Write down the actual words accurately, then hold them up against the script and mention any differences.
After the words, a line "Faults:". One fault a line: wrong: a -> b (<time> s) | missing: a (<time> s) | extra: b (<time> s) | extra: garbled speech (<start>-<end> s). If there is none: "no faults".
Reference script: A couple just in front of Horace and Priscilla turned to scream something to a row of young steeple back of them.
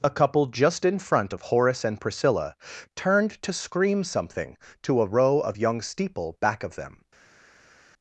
A couple just in front of Horace and Priscilla turned to scream something to a row of young steeple back of them.
Faults:
no faults